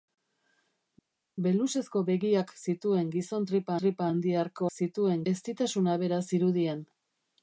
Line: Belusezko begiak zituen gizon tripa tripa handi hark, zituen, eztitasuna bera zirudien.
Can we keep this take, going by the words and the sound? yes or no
yes